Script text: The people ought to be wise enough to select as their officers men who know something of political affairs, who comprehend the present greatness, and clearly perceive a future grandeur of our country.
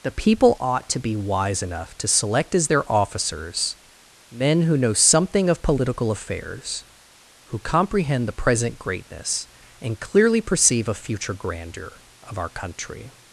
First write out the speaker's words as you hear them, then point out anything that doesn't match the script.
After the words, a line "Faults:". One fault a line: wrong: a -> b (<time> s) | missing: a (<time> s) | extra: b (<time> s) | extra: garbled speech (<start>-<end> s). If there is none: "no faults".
The people ought to be wise enough to select as their officers men who know something of political affairs, who comprehend the present greatness, and clearly perceive a future grandeur of our country.
Faults:
no faults